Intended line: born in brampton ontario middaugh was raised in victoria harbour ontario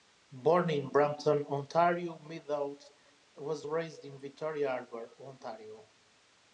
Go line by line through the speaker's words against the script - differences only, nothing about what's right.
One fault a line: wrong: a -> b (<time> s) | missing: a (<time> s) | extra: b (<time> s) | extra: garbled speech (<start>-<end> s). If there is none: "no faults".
no faults